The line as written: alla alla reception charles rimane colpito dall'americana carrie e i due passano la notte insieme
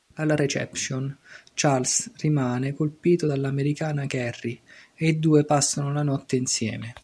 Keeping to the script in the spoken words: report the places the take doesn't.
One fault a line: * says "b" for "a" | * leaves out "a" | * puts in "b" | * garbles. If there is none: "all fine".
* leaves out "alla"